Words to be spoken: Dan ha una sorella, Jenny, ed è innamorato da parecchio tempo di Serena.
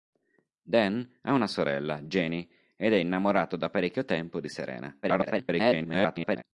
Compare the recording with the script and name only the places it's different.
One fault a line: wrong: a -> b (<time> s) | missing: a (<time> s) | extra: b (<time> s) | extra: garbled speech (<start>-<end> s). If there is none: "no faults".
extra: garbled speech (5.0-6.4 s)